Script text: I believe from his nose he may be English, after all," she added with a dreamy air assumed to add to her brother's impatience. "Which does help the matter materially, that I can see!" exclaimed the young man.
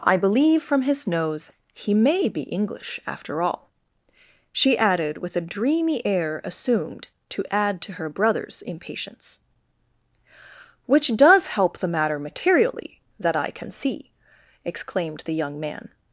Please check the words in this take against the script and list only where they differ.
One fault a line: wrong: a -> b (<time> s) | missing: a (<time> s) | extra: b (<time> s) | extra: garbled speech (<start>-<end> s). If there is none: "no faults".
no faults